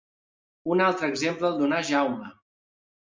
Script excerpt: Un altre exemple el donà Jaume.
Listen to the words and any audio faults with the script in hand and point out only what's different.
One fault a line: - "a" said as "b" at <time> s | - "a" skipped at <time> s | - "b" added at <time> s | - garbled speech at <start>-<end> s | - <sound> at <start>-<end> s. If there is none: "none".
none